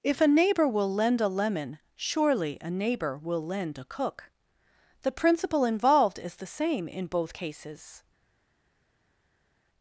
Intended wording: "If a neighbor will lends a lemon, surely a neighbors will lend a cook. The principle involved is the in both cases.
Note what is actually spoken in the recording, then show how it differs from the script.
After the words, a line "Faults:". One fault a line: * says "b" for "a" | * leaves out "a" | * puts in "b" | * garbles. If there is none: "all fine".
"If a neighbor will lend a lemon, surely a neighbor will lend a cook. The principle involved is the same in both cases.
Faults:
* says "lend" for "lends"
* says "neighbor" for "neighbors"
* puts in "same"